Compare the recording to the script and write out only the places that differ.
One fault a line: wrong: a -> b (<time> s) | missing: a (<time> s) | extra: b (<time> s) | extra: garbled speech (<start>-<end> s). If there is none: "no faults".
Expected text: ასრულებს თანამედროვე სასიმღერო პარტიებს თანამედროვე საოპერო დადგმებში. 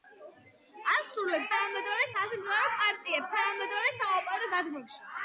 no faults